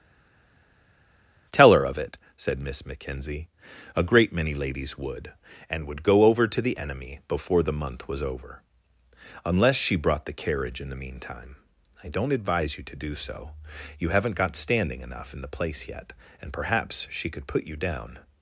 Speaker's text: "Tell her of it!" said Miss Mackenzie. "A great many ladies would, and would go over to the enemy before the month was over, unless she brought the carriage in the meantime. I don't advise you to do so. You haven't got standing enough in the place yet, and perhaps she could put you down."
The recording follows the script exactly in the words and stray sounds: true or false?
true